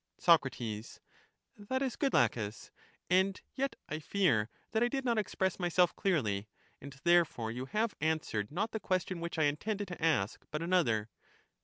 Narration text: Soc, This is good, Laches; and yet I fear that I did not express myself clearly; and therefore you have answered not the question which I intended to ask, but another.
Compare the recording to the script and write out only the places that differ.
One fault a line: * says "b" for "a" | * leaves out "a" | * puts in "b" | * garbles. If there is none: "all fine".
* says "That" for "This"